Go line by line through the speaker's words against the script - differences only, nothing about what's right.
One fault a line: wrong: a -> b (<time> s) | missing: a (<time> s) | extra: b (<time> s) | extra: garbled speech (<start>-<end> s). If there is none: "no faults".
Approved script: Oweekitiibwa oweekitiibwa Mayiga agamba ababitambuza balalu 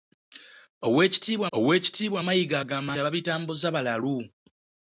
no faults